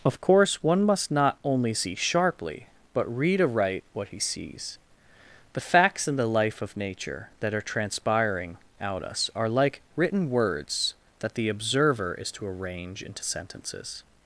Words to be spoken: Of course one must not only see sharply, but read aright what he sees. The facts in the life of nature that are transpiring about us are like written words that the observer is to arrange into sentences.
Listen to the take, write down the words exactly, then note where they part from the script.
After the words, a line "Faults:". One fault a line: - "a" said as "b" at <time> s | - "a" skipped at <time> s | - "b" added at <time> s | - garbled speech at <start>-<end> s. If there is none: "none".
Of course one must not only see sharply, but read aright what he sees. The facts in the life of nature that are transpiring out us are like written words that the observer is to arrange into sentences.
Faults:
- "about" said as "out" at 8.8 s